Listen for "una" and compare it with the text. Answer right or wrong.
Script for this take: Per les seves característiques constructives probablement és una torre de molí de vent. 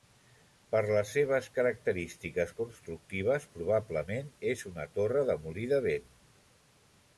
right